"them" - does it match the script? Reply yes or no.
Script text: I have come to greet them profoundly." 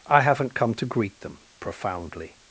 yes